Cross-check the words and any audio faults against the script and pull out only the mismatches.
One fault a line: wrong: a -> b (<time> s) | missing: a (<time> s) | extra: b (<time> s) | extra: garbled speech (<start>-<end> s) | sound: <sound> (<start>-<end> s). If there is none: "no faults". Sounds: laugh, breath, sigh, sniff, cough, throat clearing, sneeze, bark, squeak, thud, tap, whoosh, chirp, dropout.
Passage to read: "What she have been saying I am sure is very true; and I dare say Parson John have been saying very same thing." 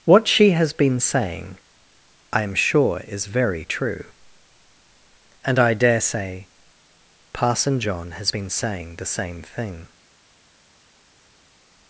wrong: have -> has (0.5 s)
wrong: have -> has (8.1 s)
wrong: very -> the (8.9 s)